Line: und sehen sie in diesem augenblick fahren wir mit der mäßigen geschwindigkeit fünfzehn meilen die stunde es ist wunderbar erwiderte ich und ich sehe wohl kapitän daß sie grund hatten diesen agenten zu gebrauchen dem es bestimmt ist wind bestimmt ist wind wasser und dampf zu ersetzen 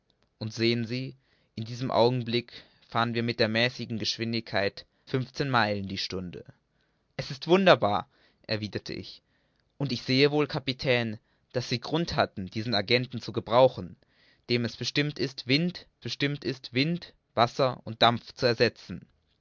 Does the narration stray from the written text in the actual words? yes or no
no